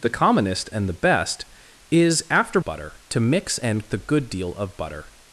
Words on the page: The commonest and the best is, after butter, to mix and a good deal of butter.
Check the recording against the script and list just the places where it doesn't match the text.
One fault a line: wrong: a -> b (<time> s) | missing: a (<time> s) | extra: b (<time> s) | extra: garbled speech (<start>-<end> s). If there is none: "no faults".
no faults